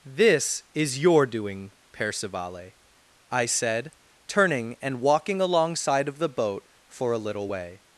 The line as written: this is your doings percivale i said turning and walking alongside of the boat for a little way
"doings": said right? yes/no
no